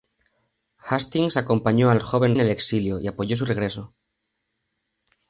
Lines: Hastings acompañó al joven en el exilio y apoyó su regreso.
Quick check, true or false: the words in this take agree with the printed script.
true